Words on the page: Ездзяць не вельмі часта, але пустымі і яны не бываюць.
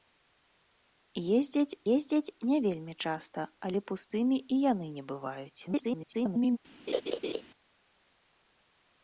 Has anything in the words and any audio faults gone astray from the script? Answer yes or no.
yes